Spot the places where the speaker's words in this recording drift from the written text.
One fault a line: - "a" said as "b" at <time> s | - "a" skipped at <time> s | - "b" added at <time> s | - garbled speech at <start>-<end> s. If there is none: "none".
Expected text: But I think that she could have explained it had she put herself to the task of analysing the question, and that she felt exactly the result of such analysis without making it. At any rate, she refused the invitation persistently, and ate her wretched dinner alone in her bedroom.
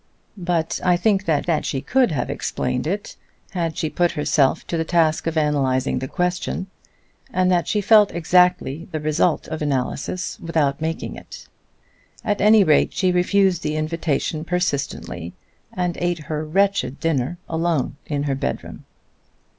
- "that" added at 1.5 s
- "such" skipped at 9.6 s